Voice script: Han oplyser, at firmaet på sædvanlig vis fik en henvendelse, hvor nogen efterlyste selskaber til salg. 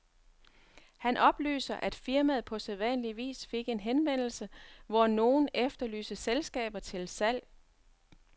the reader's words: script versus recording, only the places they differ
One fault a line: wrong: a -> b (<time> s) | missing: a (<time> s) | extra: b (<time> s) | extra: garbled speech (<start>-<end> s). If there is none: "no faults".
no faults